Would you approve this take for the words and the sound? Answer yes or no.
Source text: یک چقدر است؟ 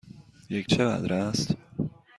yes